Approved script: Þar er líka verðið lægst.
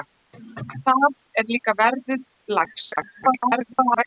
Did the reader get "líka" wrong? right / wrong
right